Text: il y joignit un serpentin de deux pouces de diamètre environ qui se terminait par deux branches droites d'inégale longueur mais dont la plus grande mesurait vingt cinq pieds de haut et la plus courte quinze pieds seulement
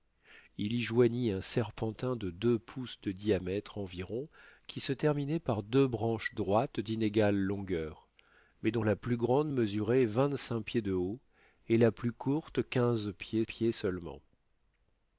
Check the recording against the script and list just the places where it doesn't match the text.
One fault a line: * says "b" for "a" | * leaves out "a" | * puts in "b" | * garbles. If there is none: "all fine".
* puts in "pieds"